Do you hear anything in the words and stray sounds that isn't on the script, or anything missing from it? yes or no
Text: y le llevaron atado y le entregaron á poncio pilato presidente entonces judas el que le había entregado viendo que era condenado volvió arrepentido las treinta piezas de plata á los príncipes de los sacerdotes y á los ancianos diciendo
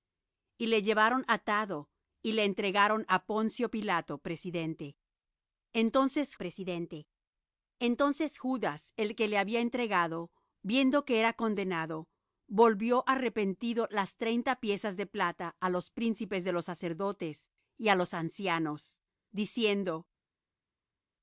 yes